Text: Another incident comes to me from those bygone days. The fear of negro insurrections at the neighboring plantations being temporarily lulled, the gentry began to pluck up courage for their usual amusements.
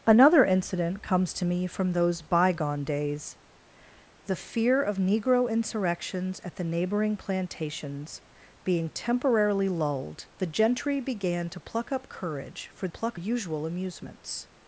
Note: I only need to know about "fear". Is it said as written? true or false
true